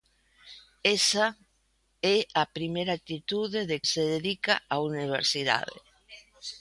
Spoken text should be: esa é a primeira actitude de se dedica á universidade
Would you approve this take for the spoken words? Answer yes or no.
yes